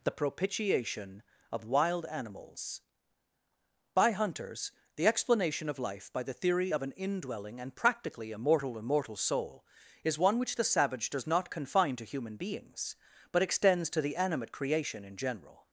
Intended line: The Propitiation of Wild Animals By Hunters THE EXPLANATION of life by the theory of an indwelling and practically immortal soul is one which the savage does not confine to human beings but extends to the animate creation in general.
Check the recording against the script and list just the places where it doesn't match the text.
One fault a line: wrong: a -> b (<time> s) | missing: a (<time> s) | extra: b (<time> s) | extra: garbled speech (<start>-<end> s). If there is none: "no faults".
extra: immortal (8.8 s)